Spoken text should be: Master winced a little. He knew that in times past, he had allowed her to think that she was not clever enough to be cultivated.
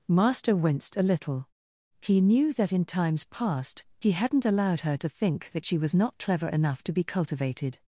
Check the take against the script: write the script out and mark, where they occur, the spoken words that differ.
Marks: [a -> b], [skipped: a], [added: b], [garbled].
Master winced a little. He knew that in times past, he [had -> hadn't] allowed her to think that she was not clever enough to be cultivated.